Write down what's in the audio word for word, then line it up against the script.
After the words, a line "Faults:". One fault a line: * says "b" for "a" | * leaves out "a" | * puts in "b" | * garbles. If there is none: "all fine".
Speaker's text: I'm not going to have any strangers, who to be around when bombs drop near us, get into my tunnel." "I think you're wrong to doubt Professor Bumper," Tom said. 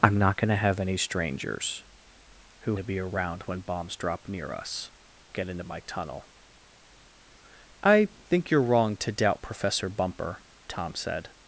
I'm not going to have any strangers, who to be around when bombs drop near us, get into my tunnel." "I think you're wrong to doubt Professor Bumper," Tom said.
Faults:
all fine